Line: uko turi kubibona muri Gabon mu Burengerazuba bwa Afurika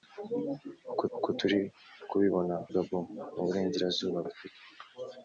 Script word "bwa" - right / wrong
wrong